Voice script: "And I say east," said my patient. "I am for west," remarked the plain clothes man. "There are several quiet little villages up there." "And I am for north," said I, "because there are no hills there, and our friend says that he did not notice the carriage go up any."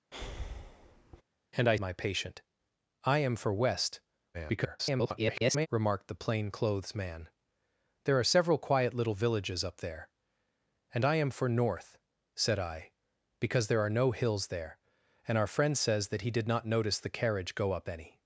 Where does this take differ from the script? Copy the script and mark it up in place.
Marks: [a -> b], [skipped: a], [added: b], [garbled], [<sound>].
[breath] "And I [skipped: say east," said] my patient. "I am for west," [garbled] remarked the plain clothes man. "There are several quiet little villages up there." "And I am for north," said I, "because there are no hills there, and our friend says that he did not notice the carriage go up any."